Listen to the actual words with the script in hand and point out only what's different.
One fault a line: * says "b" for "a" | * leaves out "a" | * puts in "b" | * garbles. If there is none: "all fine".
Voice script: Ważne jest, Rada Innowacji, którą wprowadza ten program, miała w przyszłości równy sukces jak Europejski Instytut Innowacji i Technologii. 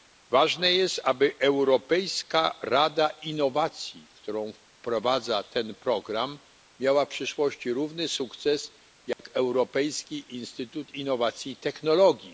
* puts in "aby Europejska"